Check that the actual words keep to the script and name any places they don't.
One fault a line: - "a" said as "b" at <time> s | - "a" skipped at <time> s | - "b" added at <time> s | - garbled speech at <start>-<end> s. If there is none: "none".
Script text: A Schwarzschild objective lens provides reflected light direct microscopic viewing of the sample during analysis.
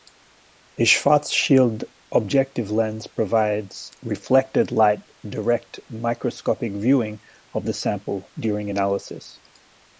none